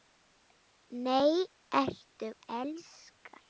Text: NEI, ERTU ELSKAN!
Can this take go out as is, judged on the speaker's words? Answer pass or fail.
pass